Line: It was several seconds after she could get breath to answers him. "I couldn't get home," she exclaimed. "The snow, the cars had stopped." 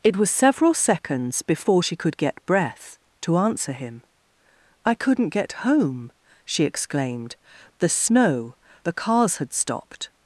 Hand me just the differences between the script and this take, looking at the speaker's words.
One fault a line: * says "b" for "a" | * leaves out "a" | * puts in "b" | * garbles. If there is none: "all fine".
* says "before" for "after"
* says "answer" for "answers"